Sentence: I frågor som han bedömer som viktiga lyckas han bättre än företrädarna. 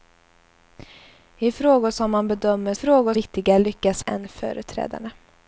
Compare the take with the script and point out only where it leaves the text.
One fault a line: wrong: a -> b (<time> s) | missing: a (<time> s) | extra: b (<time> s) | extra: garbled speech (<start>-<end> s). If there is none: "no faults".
wrong: som -> frågor (2.7 s)
missing: han bättre (4.0 s)